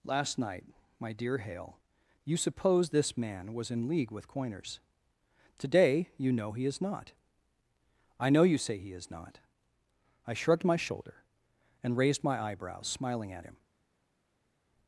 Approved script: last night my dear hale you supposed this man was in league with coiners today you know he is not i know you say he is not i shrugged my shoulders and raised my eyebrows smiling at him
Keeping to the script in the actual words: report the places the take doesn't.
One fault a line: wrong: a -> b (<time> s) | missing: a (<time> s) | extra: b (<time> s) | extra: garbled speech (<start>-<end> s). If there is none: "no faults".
wrong: shoulders -> shoulder (10.8 s)